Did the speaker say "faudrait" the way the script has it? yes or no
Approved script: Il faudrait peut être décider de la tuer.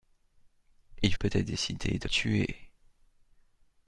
no